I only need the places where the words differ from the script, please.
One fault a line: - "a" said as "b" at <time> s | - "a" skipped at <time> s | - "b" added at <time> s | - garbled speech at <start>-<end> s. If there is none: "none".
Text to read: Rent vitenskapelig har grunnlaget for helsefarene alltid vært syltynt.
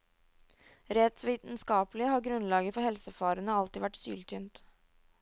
none